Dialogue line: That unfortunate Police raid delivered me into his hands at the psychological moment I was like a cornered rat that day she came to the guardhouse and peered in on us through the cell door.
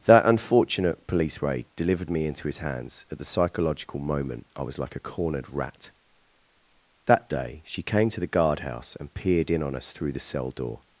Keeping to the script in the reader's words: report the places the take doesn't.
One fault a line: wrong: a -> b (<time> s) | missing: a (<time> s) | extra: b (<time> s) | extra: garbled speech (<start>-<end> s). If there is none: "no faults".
no faults